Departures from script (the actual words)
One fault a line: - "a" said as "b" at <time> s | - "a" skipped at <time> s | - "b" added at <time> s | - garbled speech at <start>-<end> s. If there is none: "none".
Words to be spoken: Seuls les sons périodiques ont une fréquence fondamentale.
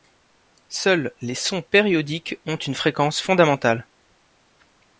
none